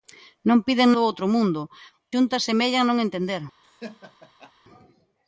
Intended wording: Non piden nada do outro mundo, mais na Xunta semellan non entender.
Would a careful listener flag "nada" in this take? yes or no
yes